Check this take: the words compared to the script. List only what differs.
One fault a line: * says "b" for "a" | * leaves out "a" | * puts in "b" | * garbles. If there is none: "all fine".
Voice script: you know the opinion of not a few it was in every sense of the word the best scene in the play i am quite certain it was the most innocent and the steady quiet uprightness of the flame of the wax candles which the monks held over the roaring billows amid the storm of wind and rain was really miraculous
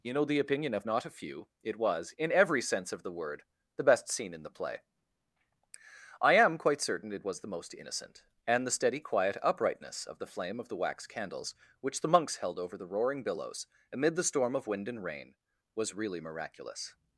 all fine